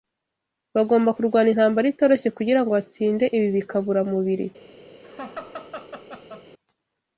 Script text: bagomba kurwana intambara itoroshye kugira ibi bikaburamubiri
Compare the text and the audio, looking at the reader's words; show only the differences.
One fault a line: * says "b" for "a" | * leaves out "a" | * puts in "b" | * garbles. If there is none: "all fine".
* puts in "ngo batsinde"